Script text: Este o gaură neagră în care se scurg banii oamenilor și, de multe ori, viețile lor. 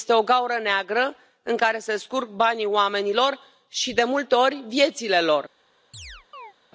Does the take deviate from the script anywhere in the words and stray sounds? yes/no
yes